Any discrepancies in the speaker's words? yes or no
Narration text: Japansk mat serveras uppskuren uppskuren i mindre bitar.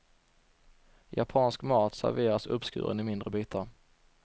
yes